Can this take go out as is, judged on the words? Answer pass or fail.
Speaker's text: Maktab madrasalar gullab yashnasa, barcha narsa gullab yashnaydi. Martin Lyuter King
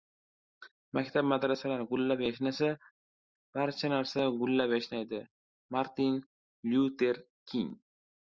pass